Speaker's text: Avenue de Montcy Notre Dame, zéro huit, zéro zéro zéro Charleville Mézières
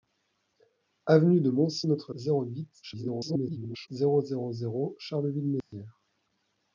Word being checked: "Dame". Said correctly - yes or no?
no